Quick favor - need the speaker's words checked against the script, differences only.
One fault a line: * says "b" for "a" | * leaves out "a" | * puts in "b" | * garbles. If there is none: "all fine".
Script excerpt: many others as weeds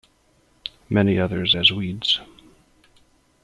all fine